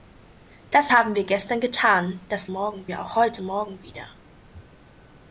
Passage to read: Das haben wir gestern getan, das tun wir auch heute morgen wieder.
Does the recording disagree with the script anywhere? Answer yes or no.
yes